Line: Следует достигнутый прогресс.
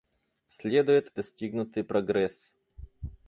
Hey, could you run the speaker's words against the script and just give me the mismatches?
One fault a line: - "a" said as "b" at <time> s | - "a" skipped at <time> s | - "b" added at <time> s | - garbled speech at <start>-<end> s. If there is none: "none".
none